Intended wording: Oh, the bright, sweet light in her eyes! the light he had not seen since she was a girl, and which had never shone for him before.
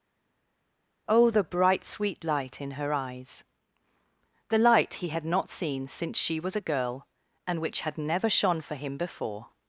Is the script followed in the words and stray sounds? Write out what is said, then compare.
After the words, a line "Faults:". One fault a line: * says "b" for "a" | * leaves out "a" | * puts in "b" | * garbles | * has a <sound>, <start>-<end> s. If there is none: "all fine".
Oh, the bright, sweet light in her eyes! the light he had not seen since she was a girl, and which had never shone for him before.
Faults:
all fine